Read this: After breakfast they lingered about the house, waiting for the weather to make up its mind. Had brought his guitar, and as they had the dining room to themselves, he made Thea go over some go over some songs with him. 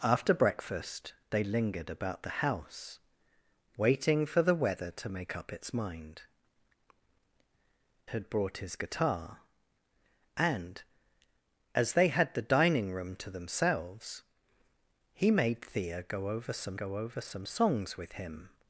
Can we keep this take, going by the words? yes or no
yes